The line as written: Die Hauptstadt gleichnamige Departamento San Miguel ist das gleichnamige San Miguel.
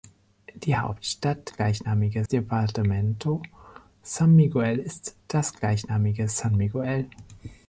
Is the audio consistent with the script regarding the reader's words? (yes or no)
yes